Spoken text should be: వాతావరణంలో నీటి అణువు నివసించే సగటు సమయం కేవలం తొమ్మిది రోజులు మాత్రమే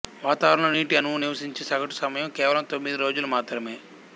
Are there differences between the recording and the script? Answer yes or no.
no